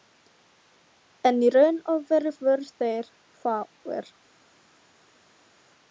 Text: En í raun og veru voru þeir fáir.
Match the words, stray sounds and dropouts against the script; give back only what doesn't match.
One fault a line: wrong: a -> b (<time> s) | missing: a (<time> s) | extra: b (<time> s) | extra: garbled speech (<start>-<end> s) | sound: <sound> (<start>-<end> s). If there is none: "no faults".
no faults